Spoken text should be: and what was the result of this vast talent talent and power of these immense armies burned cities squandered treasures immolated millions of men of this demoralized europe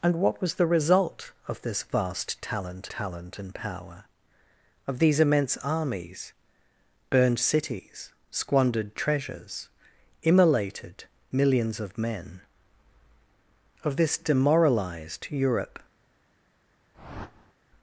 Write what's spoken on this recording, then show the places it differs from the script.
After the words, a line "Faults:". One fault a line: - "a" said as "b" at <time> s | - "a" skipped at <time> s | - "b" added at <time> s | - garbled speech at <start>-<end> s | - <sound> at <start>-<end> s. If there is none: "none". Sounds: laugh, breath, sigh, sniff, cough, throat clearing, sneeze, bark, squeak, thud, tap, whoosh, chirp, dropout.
and what was the result of this vast talent talent and power of these immense armies burned cities squandered treasures immolated millions of men of this demoralized europe
Faults:
- whoosh at 16.9-17.5 s